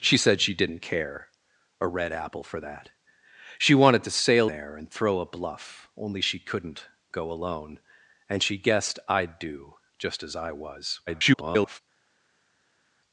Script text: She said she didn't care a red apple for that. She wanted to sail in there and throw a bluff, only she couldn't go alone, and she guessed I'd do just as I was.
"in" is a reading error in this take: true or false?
true